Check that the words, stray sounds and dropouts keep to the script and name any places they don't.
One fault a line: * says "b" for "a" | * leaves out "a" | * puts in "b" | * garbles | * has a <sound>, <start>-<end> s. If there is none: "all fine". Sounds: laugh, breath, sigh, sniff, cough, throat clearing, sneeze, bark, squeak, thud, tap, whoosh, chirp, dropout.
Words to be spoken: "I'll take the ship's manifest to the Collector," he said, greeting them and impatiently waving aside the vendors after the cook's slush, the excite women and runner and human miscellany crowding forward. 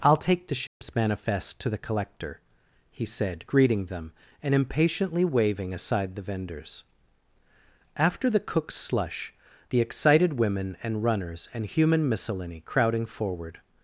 * has a dropout, 0.7-0.8 s
* says "excited" for "excite"
* says "runners" for "runner"